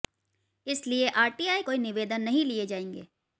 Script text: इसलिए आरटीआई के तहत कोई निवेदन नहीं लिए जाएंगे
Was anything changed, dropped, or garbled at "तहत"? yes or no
yes